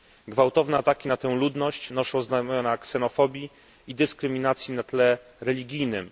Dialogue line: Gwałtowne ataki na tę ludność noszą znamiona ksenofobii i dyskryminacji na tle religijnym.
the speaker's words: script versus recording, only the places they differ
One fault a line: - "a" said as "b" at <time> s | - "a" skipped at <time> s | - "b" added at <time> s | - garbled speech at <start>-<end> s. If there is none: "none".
none